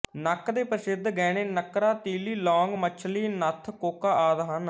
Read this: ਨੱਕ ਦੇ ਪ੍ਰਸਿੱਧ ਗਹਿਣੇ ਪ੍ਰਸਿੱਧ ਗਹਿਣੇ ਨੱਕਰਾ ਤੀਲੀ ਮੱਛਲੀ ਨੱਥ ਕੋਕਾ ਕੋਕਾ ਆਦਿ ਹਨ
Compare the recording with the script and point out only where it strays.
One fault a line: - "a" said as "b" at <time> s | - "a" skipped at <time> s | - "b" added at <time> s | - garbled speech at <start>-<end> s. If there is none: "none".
- "ਪ੍ਰਸਿੱਧ ਗਹਿਣੇ" skipped at 1.4 s
- "ਲੌਂਗ" added at 2.4 s
- "ਕੋਕਾ" skipped at 4.1 s